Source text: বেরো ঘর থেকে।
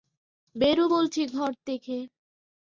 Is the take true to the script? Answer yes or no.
no